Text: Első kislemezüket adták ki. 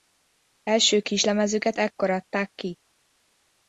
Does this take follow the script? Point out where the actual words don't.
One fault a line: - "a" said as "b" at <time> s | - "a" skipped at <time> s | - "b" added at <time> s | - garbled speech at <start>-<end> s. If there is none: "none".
- "ekkor" added at 1.8 s